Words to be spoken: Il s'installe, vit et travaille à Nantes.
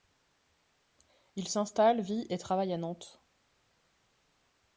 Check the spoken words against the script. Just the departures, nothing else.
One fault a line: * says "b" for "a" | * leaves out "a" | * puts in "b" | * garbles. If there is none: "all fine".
all fine